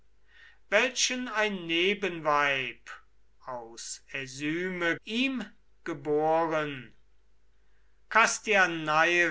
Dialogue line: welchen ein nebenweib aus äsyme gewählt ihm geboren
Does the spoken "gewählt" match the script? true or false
false